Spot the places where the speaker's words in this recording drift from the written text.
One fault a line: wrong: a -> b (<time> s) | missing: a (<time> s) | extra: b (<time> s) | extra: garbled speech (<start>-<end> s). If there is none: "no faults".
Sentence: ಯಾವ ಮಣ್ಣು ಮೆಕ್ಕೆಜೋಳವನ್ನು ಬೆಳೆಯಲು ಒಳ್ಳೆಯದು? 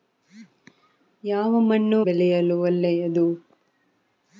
missing: ಮೆಕ್ಕೆಜೋಳವನ್ನು (2.0 s)